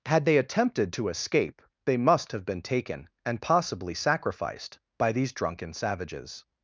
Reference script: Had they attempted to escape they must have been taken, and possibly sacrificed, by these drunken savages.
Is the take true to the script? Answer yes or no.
yes